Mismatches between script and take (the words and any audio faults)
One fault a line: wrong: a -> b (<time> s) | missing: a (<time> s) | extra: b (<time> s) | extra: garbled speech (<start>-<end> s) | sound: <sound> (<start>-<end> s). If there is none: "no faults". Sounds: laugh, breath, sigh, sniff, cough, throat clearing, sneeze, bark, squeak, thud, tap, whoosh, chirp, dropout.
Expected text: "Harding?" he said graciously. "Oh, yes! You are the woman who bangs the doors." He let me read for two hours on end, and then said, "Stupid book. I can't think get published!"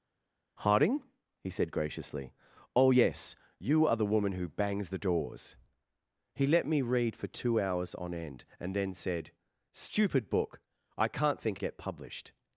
no faults